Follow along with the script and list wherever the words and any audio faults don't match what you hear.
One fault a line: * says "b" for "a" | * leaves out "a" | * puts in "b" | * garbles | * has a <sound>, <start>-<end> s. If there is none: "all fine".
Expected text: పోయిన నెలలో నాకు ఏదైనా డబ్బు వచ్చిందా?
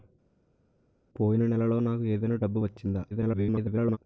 * garbles